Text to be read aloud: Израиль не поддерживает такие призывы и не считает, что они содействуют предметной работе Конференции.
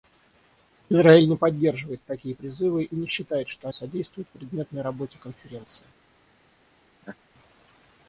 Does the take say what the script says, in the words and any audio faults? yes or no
no